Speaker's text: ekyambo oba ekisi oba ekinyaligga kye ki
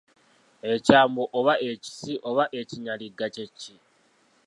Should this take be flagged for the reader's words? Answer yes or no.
no